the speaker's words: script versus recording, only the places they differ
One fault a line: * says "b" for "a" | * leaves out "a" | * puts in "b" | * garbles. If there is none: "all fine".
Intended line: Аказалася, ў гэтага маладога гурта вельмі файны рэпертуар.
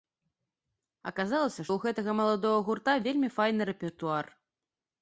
all fine